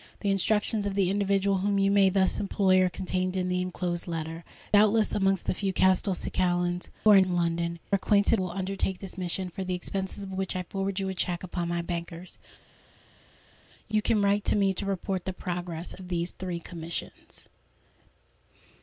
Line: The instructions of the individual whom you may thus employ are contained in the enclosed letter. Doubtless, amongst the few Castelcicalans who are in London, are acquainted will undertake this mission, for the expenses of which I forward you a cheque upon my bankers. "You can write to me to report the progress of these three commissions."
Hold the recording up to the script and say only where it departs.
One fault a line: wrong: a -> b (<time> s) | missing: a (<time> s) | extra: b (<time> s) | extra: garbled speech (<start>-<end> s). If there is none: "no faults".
no faults